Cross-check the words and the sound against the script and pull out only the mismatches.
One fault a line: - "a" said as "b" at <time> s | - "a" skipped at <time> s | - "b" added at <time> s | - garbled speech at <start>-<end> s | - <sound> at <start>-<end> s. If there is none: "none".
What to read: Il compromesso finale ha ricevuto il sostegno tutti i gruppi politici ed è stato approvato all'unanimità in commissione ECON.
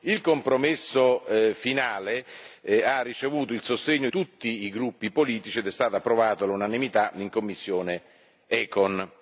none